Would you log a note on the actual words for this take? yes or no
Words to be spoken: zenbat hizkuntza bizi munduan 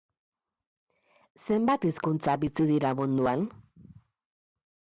yes